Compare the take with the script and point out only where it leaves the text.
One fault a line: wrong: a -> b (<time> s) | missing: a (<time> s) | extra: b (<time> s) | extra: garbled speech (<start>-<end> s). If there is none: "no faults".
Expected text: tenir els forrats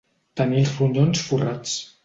extra: ronyons (0.8 s)